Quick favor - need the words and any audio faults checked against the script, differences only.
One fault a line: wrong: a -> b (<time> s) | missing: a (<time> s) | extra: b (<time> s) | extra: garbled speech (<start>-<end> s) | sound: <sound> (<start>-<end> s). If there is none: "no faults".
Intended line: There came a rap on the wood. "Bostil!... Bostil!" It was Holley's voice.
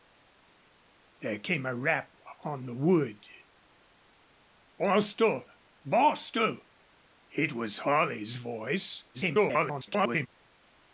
extra: garbled speech (9.1-10.3 s)